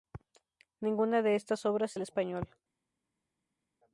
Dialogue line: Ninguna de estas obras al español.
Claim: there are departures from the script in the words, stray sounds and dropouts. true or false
false